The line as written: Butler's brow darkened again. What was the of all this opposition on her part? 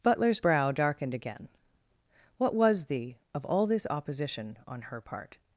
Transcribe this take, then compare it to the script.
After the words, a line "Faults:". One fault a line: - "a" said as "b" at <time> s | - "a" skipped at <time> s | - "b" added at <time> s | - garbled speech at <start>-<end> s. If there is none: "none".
Butler's brow darkened again. What was the of all this opposition on her part?
Faults:
none